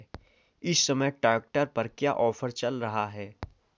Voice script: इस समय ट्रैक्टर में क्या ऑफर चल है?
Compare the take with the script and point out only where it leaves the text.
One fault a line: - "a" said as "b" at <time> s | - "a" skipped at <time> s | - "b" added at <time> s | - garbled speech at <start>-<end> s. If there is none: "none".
- "में" said as "पर" at 1.6 s
- "रहा" added at 2.8 s